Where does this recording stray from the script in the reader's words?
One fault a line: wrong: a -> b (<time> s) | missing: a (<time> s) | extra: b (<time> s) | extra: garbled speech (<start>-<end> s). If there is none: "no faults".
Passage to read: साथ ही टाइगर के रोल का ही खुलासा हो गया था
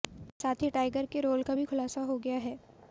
wrong: ही -> भी (1.5 s)
wrong: था -> है (2.4 s)